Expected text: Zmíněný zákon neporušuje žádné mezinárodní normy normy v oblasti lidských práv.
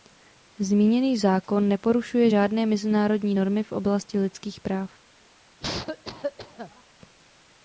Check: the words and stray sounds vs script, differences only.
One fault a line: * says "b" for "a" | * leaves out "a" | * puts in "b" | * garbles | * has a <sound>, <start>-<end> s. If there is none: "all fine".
* leaves out "normy"
* has a cough, 5.6-6.8 s